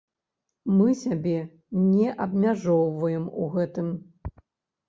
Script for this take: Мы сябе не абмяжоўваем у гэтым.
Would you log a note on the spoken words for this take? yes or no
no